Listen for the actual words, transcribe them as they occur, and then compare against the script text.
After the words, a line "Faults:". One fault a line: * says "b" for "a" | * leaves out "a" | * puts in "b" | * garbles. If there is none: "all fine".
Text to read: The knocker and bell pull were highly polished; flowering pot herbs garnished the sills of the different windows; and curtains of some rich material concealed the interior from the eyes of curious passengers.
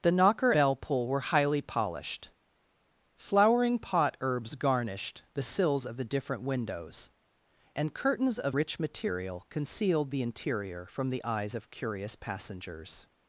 The knocker bell pull were highly polished; flowering pot herbs garnished the sills of the different windows; and curtains of rich material concealed the interior from the eyes of curious passengers.
Faults:
* leaves out "and"
* leaves out "some"